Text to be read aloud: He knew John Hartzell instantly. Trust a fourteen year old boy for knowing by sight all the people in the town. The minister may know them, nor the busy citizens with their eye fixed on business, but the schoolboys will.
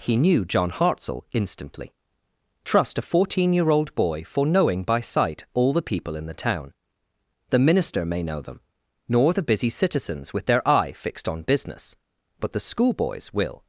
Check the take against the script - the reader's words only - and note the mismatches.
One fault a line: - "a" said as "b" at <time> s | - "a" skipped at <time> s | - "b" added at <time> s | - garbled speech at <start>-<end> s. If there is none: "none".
none